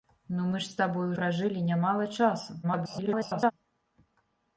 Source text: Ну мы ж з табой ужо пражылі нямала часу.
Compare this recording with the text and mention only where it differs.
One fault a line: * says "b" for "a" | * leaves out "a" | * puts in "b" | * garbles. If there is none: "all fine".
* leaves out "ужо"
* garbles